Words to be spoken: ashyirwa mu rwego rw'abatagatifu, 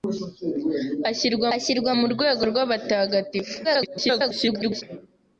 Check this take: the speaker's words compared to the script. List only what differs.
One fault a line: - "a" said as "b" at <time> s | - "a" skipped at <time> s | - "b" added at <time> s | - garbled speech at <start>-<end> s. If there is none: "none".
- "ashyirwa" added at 1.5 s
- garbled speech at 3.6-4.8 s